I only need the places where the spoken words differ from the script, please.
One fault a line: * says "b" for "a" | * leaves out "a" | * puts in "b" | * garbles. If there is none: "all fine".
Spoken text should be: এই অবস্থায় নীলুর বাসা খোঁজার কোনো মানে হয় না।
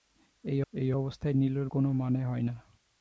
* puts in "এই"
* leaves out "বাসা খোঁজার"